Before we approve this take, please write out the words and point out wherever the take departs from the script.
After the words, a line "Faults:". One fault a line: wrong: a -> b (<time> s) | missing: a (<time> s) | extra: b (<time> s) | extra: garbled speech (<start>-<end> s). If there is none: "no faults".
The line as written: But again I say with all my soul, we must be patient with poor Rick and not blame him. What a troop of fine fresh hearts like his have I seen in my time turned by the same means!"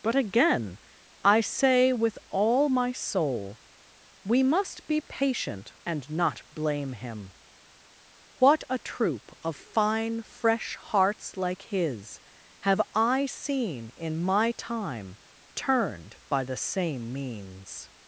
But again I say with all my soul, we must be patient and not blame him. What a troop of fine fresh hearts like his have I seen in my time turned by the same means!"
Faults:
missing: with poor Rick (5.7 s)